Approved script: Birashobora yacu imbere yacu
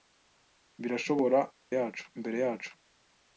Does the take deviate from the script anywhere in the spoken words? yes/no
no